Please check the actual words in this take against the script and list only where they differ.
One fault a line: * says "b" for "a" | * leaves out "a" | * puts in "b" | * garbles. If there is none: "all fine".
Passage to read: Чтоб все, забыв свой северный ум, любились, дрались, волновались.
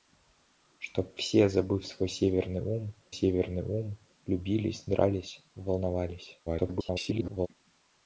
* puts in "северный ум"
* garbles